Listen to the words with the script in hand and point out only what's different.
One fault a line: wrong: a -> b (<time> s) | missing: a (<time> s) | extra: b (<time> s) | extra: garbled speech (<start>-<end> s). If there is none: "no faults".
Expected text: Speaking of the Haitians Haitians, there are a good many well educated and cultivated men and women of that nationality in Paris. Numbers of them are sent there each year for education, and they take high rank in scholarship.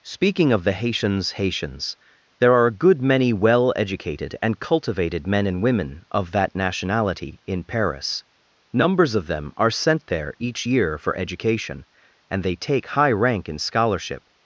no faults